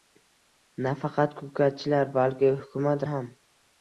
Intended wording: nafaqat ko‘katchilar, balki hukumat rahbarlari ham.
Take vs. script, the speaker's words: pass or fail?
fail